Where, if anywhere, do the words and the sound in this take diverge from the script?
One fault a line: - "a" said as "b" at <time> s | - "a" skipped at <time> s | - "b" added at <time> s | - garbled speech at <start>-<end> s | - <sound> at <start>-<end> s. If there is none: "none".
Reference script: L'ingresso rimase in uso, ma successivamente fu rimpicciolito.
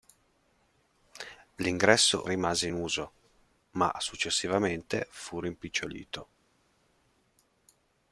none